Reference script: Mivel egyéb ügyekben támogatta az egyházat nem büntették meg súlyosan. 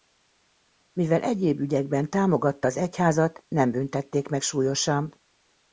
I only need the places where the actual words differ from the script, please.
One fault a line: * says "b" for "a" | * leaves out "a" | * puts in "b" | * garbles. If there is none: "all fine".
all fine